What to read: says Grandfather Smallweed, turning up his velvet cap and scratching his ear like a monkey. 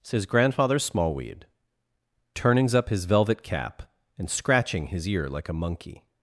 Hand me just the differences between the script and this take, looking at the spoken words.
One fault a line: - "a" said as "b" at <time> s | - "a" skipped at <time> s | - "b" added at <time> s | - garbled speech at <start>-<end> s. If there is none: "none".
- "turning" said as "turnings" at 2.3 s